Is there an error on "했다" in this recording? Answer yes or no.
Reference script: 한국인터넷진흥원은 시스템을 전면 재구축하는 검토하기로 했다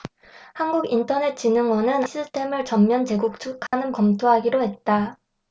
no